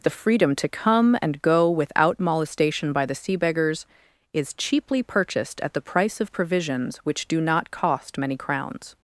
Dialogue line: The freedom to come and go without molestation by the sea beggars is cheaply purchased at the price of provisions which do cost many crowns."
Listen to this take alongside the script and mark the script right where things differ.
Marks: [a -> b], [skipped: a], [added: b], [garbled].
The freedom to come and go without molestation by the sea beggars is cheaply purchased at the price of provisions which do [added: not] cost many crowns."